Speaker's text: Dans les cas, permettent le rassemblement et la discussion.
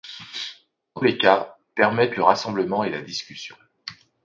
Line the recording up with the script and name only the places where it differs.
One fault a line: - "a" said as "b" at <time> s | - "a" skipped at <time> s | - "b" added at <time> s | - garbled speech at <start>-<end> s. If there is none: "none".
none